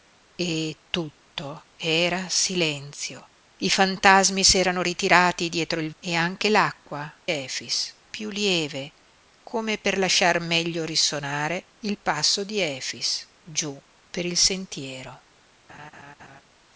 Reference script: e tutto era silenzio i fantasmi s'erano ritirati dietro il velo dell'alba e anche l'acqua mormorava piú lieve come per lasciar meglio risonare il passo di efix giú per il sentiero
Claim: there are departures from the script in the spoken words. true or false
true